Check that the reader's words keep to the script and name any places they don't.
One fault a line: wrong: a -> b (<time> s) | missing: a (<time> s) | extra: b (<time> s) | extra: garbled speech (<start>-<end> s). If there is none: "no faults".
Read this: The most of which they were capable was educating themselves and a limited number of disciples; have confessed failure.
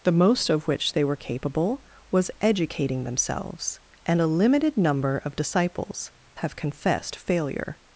no faults